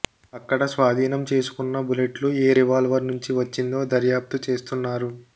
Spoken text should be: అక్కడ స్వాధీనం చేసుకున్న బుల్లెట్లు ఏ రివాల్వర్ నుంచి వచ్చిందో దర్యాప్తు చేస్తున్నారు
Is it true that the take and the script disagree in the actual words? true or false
false